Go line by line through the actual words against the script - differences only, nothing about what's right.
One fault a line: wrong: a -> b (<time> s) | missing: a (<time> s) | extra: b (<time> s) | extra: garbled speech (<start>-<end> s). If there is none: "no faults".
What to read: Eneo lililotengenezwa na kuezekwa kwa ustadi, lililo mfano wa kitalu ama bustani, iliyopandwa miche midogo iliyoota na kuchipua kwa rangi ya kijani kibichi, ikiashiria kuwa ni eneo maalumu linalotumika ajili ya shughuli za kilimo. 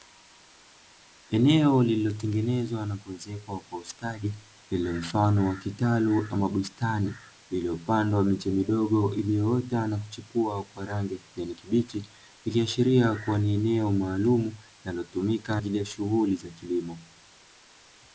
no faults